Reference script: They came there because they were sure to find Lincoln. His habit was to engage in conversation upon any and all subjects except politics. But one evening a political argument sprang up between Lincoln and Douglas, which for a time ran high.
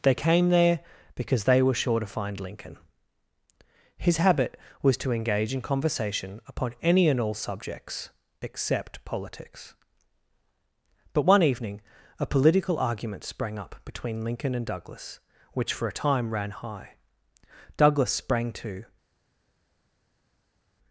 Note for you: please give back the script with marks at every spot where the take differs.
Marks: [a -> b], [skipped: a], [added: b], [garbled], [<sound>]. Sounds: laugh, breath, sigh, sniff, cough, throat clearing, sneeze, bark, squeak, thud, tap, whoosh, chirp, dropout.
They came there because they were sure to find Lincoln. His habit was to engage in conversation upon any and all subjects except politics. But one evening a political argument sprang up between Lincoln and Douglas, which for a time ran high. [added: Douglas sprang to]